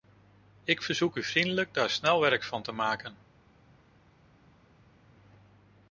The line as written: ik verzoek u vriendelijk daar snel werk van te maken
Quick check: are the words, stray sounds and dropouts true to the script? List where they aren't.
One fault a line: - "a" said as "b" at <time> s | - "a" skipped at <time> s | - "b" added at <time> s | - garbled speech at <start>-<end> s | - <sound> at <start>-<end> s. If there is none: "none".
none